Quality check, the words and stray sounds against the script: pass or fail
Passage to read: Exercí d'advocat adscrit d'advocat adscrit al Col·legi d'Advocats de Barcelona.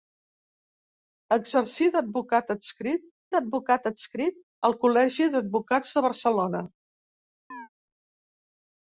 fail